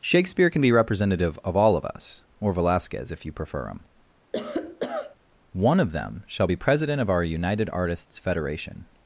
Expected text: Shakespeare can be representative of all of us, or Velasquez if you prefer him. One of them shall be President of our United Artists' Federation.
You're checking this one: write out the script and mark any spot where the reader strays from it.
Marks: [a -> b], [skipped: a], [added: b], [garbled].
Shakespeare can be representative of all of us, or Velasquez if you prefer him. One of them shall be President of our United Artists' Federation.